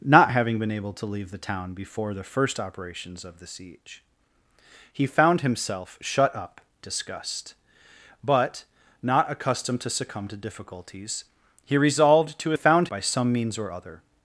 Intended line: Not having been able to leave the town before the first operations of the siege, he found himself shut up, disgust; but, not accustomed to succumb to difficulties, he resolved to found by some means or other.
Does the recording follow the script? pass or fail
pass